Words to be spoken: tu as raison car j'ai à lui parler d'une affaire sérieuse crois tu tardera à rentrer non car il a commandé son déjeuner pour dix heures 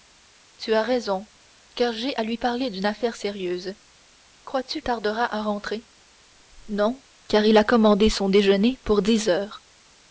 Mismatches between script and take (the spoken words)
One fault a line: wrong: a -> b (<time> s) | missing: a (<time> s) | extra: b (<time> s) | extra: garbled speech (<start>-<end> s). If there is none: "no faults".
no faults